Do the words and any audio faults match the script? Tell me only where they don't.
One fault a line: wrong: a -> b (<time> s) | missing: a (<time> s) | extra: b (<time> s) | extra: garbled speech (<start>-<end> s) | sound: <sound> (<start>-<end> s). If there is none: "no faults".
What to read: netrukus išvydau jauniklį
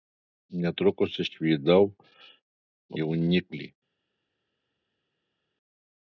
no faults